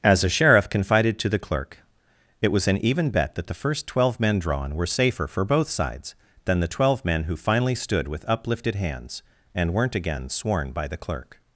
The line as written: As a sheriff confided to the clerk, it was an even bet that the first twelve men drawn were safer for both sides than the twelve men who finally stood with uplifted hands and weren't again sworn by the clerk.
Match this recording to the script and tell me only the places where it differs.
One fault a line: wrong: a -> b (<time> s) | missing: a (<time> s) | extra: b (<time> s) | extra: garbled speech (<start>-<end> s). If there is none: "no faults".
no faults